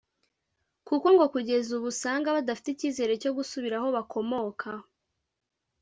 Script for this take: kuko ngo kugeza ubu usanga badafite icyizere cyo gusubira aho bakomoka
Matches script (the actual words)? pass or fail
pass